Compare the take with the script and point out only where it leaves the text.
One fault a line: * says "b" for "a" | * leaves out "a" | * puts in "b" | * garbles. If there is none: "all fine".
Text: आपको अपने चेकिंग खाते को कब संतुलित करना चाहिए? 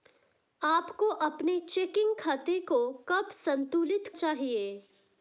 * leaves out "करना"